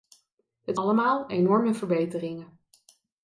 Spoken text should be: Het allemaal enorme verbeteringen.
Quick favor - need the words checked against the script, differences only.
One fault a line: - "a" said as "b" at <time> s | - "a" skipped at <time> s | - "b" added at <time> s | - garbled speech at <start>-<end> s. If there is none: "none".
none